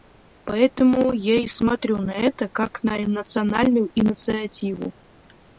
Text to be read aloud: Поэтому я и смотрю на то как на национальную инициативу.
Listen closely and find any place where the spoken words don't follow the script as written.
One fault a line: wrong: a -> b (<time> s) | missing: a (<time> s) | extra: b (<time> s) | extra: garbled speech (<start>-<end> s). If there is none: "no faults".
wrong: то -> это (2.1 s)